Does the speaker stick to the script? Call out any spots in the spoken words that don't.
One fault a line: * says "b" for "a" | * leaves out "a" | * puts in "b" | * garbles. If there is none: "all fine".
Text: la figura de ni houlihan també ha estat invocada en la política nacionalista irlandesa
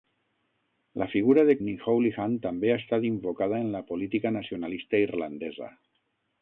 all fine